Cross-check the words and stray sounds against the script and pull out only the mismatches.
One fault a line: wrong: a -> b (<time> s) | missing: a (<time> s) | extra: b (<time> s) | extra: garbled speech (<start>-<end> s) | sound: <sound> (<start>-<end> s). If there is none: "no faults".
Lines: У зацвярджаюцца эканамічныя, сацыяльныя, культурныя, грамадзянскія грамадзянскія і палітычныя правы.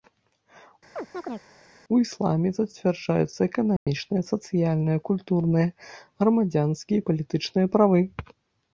sound: chirp (1.0-1.5 s)
extra: ісламе (2.0 s)
sound: dropout (3.8-3.9 s)
missing: грамадзянскія (7.0 s)